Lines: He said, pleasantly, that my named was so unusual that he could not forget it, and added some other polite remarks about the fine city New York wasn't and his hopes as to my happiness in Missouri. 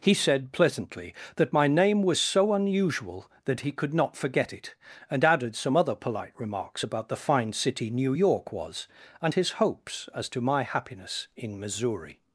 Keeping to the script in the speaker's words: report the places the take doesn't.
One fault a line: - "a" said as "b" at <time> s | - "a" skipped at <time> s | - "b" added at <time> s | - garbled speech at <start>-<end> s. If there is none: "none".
- "named" said as "name" at 1.7 s
- "wasn't" said as "was" at 8.5 s